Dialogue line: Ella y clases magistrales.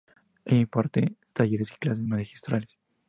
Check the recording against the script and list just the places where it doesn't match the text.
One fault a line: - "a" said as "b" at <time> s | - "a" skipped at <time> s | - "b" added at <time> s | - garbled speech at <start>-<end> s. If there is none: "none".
- "imparte talleres" added at 0.6 s